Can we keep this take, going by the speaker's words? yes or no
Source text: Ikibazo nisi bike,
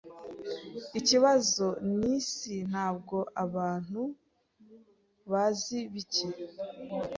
no